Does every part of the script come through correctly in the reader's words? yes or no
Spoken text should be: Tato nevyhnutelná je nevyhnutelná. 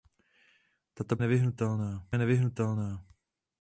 yes